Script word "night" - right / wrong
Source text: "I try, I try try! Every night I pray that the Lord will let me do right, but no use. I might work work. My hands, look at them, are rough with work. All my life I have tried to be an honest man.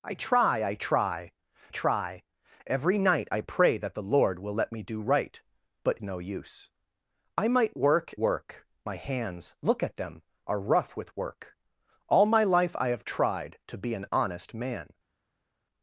right